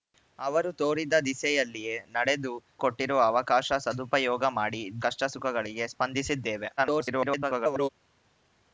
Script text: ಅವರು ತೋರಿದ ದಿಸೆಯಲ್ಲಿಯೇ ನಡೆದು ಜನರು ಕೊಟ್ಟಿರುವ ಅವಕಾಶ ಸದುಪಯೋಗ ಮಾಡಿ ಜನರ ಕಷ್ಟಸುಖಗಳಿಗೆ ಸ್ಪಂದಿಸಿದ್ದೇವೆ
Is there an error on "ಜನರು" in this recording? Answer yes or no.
yes